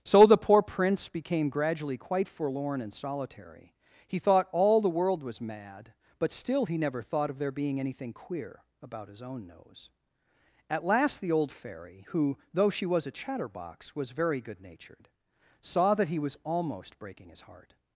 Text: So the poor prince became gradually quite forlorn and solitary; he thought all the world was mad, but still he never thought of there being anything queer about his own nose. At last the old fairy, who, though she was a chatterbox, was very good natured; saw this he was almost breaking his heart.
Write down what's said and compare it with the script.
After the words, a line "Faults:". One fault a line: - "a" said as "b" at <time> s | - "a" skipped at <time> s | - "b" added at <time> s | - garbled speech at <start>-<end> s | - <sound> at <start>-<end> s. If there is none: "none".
So the poor prince became gradually quite forlorn and solitary; he thought all the world was mad, but still he never thought of there being anything queer about his own nose. At last the old fairy, who, though she was a chatterbox, was very good natured; saw that he was almost breaking his heart.
Faults:
- "this" said as "that" at 15.9 s